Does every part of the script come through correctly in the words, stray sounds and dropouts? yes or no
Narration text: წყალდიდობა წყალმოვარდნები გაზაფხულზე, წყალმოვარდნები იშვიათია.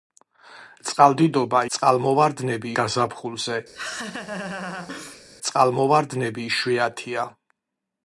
no